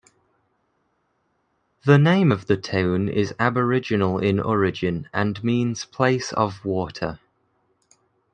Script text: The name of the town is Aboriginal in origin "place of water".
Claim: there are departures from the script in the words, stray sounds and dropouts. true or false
true